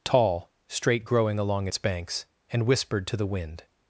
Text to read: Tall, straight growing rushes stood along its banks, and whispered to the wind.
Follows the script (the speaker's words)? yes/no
no